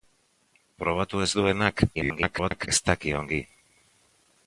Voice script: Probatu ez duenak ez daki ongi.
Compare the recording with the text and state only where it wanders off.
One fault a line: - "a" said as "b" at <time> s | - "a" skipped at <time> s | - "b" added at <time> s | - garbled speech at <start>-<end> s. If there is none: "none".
- garbled speech at 1.9-2.7 s